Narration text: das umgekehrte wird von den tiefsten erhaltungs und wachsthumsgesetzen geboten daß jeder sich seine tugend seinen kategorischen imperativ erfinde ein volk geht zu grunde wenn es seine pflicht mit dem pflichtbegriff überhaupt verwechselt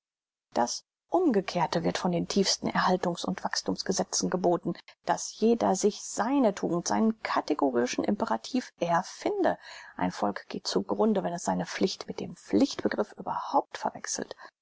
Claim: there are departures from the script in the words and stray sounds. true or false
false